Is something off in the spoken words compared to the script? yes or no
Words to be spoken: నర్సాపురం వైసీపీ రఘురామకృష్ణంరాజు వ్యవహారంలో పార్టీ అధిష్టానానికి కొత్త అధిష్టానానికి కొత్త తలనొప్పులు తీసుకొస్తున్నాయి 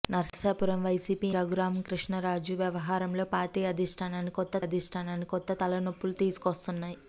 no